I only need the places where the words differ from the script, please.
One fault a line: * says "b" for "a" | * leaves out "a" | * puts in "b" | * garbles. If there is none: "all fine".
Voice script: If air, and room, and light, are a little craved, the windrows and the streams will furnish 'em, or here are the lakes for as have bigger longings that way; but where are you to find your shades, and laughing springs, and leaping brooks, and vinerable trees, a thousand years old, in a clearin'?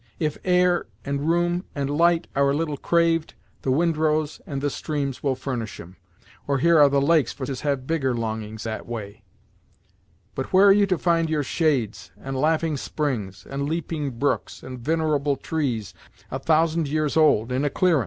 all fine